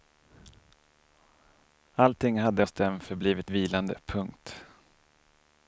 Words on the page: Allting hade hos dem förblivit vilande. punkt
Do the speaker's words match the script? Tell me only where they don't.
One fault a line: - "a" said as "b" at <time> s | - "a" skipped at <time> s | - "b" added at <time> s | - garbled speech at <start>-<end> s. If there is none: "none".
none